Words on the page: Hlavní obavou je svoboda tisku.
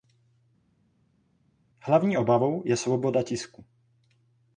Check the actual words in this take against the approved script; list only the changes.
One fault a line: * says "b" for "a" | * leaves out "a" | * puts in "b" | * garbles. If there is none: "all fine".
all fine